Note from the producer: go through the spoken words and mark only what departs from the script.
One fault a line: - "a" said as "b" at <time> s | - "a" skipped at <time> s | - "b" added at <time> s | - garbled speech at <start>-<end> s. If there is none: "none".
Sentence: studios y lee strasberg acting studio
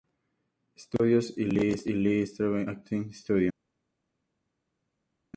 none